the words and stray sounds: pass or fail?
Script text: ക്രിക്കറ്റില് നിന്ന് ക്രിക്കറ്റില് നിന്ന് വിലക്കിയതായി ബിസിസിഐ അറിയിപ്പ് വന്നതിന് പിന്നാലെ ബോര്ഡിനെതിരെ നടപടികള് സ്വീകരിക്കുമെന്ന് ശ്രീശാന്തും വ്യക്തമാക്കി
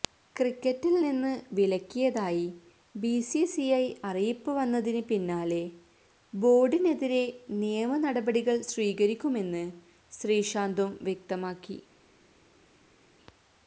fail